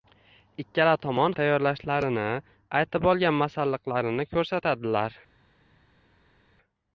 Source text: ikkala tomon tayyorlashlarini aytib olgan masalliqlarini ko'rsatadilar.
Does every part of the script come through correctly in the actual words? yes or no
yes